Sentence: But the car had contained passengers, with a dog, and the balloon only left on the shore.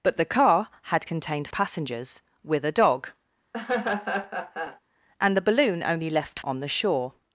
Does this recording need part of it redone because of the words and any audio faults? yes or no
yes